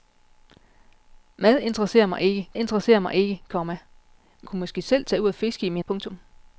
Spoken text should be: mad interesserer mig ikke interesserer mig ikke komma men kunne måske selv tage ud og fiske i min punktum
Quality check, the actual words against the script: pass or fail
pass